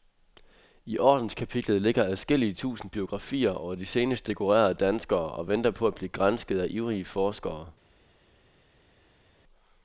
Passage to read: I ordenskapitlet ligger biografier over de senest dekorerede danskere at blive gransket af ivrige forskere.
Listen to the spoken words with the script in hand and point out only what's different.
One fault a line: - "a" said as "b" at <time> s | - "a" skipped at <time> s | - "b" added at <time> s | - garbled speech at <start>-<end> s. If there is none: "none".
- "adskillige tusind" added at 2.0 s
- "og venter på" added at 5.3 s